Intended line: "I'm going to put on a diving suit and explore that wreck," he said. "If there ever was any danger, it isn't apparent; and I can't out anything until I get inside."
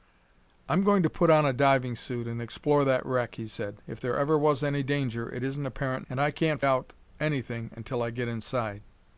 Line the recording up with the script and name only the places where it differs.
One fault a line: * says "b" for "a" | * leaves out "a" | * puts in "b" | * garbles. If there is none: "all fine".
all fine